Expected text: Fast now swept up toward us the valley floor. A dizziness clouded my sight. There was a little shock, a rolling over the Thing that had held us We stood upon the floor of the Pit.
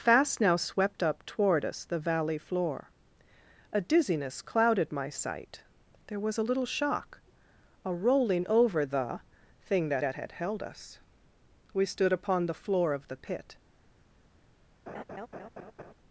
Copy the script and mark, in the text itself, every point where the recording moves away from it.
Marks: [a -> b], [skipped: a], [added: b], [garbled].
Fast now swept up toward us the valley floor. A dizziness clouded my sight. There was a little shock, a rolling over the Thing that [added: that] had held us We stood upon the floor of the Pit.